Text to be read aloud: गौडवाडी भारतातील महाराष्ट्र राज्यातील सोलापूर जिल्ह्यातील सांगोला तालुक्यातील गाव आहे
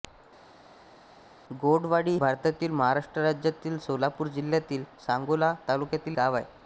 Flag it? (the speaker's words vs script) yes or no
no